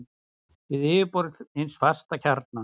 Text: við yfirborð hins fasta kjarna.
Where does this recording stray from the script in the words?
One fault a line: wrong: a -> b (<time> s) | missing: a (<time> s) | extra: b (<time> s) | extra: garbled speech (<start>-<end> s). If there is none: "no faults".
no faults